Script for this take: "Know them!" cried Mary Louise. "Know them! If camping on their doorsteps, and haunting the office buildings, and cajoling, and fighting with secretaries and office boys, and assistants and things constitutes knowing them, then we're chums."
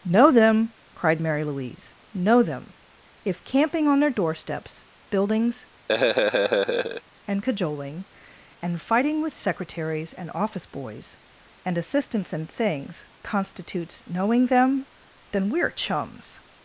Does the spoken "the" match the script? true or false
false